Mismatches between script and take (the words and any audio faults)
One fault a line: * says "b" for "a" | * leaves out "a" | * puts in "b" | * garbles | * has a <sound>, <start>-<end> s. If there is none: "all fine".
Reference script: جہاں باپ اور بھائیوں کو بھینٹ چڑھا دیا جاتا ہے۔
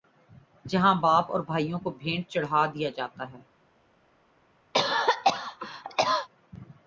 * has a cough, 4.7-6.3 s